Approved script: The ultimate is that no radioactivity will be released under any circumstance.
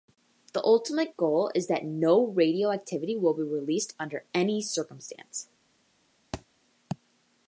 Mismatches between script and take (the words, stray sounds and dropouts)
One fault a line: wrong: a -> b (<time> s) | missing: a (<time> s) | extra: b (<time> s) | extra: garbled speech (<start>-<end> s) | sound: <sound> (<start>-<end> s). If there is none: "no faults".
extra: goal (1.1 s)
sound: thud (6.3-6.5 s)